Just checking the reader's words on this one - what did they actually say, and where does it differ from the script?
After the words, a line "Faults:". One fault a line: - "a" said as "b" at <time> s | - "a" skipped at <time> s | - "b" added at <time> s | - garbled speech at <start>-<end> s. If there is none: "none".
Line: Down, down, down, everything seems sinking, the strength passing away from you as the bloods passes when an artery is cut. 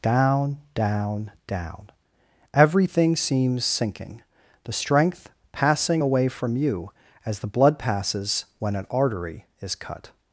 Down, down, down, everything seems sinking, the strength passing away from you as the blood passes when an artery is cut.
Faults:
- "bloods" said as "blood" at 7.5 s